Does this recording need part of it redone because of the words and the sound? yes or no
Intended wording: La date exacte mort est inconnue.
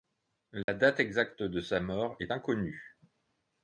yes